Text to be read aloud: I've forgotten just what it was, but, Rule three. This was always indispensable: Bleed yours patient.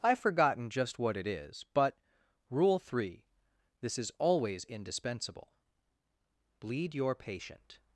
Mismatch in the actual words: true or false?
true